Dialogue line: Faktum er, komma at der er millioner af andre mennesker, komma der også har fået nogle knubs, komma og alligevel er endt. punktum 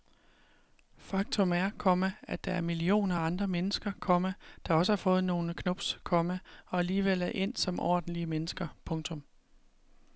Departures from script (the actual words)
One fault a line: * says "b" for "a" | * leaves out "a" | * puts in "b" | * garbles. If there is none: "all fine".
* puts in "som ordentlige mennesker"